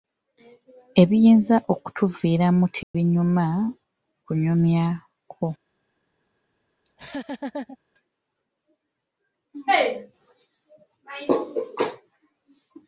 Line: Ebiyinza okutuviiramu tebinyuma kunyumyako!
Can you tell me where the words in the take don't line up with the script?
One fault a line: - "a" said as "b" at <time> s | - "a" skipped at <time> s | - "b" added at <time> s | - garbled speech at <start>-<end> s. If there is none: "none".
none